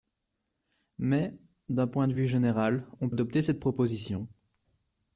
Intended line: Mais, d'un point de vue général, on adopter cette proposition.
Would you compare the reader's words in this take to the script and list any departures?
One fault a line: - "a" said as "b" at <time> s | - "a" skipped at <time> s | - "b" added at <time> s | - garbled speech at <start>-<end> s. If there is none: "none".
none